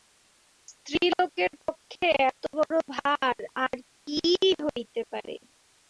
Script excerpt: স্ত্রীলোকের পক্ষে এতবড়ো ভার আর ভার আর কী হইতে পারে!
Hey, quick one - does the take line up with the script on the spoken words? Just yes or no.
no